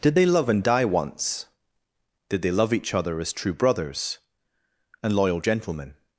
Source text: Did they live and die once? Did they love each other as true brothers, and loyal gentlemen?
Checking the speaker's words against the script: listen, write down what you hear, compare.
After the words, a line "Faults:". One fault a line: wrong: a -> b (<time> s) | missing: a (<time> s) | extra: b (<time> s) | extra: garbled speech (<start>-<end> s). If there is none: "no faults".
Did they love and die once? Did they love each other as true brothers, and loyal gentlemen?
Faults:
wrong: live -> love (0.3 s)